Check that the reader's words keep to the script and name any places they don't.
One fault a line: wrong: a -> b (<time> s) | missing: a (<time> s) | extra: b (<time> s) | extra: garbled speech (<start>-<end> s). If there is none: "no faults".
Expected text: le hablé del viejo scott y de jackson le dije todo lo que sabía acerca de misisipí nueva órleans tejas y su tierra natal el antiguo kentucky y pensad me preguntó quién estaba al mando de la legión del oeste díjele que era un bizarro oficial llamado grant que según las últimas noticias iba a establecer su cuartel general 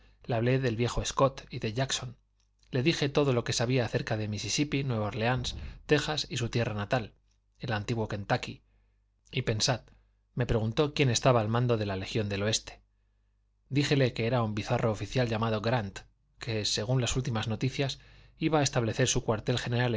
no faults